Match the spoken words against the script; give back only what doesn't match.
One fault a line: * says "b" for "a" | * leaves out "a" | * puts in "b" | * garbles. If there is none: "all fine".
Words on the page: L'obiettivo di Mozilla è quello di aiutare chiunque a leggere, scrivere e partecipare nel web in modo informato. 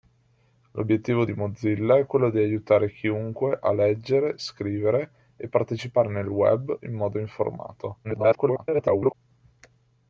* garbles